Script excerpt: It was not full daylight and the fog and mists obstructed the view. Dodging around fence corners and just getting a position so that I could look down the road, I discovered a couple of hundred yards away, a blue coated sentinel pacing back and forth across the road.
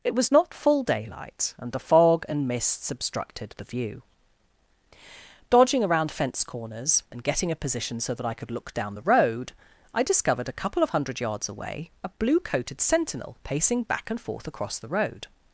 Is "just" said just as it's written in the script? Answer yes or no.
no